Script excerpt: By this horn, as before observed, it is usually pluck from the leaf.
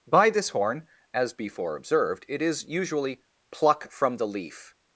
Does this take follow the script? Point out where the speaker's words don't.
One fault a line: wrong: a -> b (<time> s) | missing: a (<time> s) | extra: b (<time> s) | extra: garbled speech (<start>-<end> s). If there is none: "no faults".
no faults